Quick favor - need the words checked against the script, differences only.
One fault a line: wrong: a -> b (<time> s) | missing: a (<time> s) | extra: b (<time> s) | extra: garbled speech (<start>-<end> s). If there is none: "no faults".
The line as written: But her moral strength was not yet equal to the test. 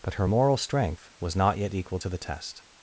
no faults